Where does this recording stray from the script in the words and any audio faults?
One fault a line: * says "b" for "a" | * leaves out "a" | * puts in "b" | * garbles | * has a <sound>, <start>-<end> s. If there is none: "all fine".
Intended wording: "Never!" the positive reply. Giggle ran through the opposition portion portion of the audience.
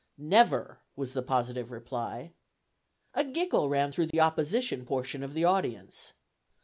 * puts in "was"
* puts in "A"
* has a dropout, 4.1-4.1 s
* leaves out "portion"